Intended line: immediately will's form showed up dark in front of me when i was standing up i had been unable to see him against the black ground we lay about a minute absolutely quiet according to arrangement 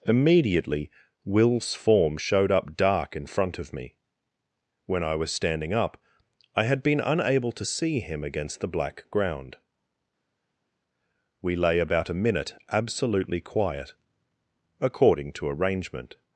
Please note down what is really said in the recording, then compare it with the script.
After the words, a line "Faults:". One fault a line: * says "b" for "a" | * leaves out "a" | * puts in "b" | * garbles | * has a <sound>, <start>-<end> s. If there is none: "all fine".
immediately will's form showed up dark in front of me when i was standing up i had been unable to see him against the black ground we lay about a minute absolutely quiet according to arrangement
Faults:
all fine